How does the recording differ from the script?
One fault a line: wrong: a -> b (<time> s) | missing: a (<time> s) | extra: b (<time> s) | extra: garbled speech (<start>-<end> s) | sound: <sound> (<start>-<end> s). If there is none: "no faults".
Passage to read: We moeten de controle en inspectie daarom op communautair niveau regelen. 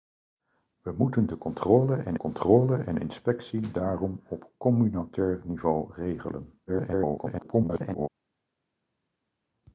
extra: controle en (2.2 s)
extra: garbled speech (6.7-8.1 s)